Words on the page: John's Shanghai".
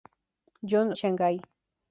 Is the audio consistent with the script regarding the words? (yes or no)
yes